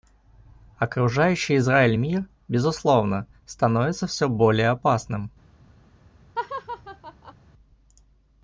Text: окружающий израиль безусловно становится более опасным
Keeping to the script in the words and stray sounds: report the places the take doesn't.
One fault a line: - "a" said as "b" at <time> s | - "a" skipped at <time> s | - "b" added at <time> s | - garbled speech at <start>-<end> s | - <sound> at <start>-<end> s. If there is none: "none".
- "мир" added at 1.9 s
- "все" added at 4.1 s
- laugh at 6.4-7.3 s